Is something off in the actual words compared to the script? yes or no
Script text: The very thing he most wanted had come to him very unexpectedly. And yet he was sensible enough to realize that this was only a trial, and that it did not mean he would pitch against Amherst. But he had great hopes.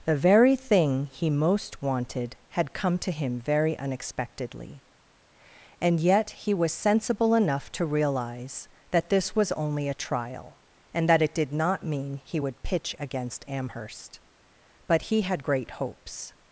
no